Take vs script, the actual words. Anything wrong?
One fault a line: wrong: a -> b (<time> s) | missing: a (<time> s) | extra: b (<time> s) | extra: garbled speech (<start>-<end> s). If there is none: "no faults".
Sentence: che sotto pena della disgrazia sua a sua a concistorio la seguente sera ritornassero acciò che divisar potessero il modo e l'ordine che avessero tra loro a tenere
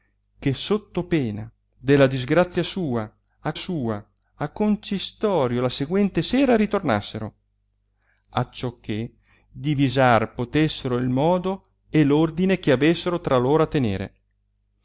no faults